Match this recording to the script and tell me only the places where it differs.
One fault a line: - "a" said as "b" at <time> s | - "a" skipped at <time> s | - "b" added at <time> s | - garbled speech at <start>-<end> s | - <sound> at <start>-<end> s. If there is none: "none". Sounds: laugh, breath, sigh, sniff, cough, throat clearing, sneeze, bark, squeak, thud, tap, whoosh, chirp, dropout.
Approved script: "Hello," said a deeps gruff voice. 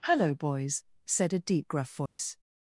- "boys" added at 0.3 s
- "deeps" said as "deep" at 1.4 s
- dropout at 2.1-2.2 s